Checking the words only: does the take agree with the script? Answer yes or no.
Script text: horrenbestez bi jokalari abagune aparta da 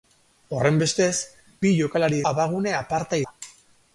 yes